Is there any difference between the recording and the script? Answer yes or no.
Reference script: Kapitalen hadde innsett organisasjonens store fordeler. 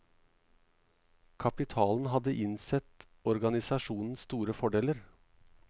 no